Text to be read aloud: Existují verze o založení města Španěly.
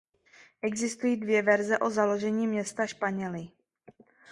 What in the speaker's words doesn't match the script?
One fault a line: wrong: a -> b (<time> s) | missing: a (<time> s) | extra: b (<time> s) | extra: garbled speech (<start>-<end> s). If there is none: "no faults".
extra: dvě (1.2 s)